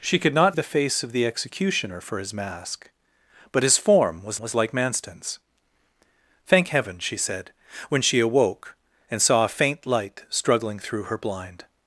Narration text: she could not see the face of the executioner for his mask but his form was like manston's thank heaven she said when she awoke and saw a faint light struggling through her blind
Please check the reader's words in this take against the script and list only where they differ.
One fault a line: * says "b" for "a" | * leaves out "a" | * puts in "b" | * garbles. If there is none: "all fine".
* leaves out "see"
* puts in "was"